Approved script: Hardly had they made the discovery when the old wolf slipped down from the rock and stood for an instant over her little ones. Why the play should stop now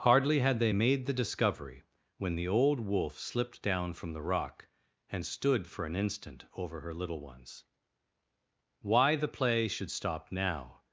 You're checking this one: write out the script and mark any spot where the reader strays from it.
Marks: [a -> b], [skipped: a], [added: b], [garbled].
Hardly had they made the discovery when the old wolf slipped down from the rock and stood for an instant over her little ones. Why the play should stop now